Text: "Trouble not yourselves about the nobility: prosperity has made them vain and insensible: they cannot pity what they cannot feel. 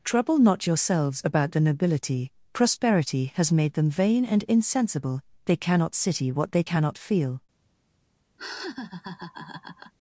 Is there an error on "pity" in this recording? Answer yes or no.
yes